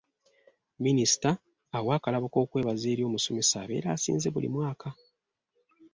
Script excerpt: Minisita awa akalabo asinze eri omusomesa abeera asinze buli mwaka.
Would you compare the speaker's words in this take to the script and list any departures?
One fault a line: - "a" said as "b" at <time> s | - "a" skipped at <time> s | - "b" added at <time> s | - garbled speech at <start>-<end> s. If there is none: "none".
- "asinze" said as "k'okwebaza" at 2.3 s